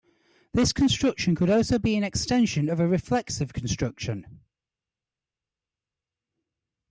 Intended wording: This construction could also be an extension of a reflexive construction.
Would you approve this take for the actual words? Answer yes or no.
yes